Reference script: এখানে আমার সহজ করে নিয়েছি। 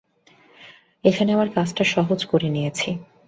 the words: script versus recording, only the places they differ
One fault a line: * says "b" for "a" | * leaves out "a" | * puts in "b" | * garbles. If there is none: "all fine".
* puts in "কাজটা"